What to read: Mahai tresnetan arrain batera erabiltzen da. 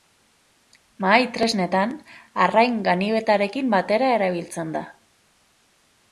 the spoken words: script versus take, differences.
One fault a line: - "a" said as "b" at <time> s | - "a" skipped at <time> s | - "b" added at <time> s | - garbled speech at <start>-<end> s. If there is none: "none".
- "ganibetarekin" added at 2.9 s